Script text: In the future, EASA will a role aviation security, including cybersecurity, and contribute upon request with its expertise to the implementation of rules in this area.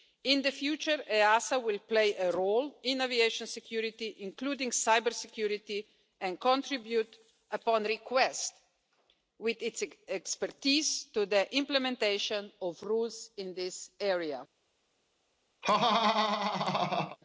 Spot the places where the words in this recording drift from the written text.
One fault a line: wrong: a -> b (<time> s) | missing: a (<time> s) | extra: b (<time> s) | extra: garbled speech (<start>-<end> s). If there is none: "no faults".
extra: play (1.8 s)
extra: in (2.8 s)